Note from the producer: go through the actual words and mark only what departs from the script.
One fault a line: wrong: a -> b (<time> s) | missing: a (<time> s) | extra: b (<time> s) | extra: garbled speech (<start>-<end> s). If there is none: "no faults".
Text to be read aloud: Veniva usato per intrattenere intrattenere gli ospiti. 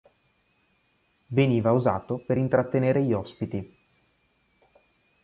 missing: intrattenere (3.0 s)